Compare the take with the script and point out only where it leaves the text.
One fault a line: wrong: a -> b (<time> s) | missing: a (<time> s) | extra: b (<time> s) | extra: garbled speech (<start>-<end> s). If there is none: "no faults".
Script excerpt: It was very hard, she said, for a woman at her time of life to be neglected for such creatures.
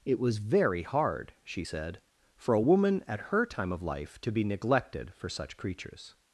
no faults